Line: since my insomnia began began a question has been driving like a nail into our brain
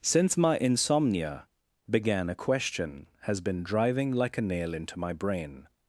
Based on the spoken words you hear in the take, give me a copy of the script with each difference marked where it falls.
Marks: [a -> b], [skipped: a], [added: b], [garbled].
since my insomnia began [skipped: began] a question has been driving like a nail into [our -> my] brain